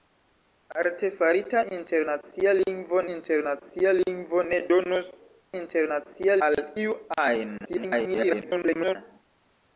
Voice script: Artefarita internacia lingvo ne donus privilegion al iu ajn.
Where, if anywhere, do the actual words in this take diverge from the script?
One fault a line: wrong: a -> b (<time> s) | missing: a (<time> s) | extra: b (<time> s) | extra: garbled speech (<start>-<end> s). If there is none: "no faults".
extra: internacia lingvo (3.2 s)
wrong: privilegion -> internacia (5.6 s)
extra: garbled speech (7.6-9.0 s)